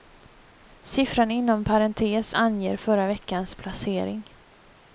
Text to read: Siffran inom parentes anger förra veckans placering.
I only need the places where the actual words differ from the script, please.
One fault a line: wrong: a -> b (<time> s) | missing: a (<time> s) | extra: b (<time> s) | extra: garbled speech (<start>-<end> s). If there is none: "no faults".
no faults